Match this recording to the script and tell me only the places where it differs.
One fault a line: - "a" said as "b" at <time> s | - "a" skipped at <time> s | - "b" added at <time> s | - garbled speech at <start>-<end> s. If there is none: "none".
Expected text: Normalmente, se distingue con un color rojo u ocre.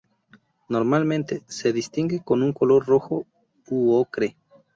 none